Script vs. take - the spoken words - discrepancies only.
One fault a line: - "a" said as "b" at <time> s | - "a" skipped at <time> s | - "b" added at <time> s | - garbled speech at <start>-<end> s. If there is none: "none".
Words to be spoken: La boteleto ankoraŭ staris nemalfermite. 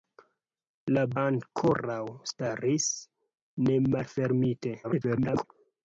- "boteleto" skipped at 1.0 s
- garbled speech at 4.8-5.4 s